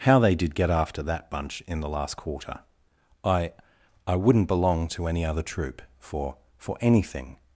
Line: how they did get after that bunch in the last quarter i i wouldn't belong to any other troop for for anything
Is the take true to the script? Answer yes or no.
yes